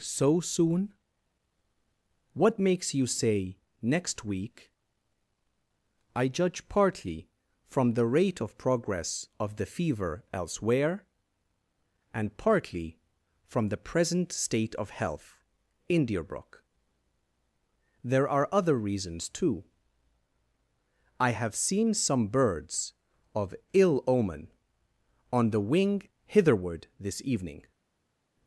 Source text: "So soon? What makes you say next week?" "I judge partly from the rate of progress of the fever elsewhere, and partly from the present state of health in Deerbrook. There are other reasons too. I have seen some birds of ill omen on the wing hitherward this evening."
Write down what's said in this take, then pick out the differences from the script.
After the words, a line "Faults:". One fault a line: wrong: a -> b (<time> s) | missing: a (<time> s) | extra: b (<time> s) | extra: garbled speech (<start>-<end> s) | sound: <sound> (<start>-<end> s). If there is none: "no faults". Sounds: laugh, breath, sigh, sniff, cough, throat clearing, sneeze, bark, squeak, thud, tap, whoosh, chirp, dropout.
"So soon? What makes you say next week?" "I judge partly from the rate of progress of the fever elsewhere, and partly from the present state of health in Deerbrook. There are other reasons too. I have seen some birds of ill omen on the wing hitherward this evening."
Faults:
no faults